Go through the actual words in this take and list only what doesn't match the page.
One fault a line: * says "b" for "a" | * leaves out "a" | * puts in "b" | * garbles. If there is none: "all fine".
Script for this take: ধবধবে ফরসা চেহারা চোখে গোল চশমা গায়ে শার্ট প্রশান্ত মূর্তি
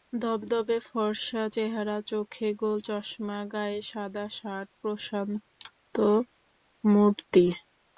* puts in "সাদা"